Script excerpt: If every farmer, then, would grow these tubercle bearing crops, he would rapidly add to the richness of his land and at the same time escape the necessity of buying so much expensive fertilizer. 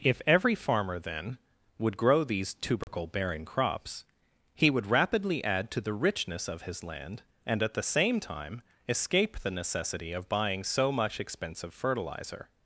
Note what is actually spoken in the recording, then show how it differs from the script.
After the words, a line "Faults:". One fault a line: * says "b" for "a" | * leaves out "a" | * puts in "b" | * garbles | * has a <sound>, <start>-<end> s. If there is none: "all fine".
If every farmer, then, would grow these tubercle bearing crops, he would rapidly add to the richness of his land and at the same time escape the necessity of buying so much expensive fertilizer.
Faults:
* has a dropout, 2.8-2.9 s